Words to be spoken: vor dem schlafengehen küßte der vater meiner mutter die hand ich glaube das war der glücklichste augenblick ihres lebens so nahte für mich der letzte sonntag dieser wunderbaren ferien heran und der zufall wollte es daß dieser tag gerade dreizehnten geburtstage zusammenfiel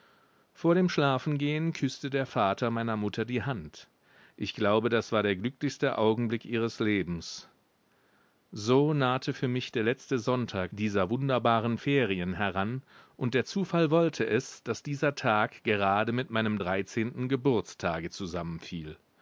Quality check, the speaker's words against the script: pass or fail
fail